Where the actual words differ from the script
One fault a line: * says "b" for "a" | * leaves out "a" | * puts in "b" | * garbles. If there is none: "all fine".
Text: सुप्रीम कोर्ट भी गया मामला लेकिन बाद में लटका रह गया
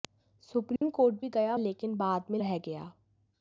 * leaves out "मामला"
* leaves out "लटका"